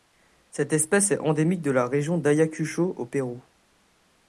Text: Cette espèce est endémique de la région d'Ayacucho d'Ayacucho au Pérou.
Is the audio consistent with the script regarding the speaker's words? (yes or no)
no